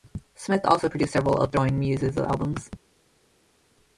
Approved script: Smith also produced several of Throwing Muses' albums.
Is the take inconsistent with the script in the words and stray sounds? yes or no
no